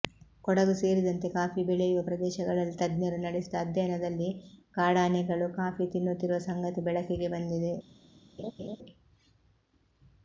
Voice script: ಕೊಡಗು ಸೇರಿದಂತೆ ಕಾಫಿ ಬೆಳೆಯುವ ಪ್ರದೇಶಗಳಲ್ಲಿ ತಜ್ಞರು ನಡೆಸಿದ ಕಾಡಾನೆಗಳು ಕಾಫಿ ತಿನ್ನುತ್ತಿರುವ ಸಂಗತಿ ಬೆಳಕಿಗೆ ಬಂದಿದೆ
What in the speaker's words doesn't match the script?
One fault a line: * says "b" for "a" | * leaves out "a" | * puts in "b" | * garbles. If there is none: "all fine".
* puts in "ಅಧ್ಯಯನದಲ್ಲಿ"